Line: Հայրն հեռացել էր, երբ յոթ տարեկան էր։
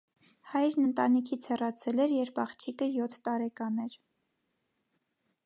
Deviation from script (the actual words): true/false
true